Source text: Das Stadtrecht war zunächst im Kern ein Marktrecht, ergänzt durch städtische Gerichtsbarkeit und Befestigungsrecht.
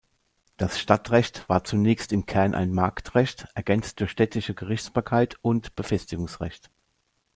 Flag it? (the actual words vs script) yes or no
no